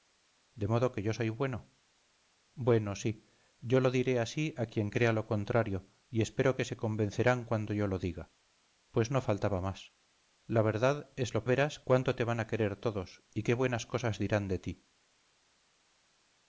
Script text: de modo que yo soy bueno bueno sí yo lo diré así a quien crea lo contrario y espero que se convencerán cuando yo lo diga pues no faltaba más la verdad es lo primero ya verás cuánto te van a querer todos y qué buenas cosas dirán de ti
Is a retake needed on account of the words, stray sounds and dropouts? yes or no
yes